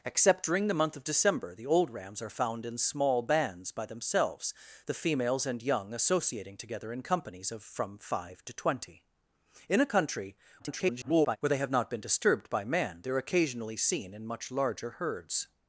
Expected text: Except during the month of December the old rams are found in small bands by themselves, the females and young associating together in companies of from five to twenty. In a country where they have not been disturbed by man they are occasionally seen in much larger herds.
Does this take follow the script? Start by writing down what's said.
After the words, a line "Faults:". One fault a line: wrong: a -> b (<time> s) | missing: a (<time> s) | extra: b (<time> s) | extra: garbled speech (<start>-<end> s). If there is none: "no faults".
Except during the month of December the old rams are found in small bands by themselves, the females and young associating together in companies of from five to twenty. In a country [garbled] where they have not been disturbed by man they are occasionally seen in much larger herds.
Faults:
extra: garbled speech (10.6-11.4 s)